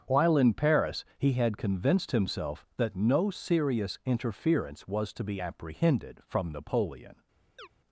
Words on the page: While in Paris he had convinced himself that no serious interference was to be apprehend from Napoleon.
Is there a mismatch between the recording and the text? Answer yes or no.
yes